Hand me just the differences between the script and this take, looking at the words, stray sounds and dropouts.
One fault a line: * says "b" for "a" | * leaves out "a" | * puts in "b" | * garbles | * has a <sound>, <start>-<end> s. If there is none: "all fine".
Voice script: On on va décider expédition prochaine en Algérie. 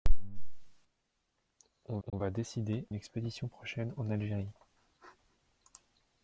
* has a dropout, 2.1-2.1 s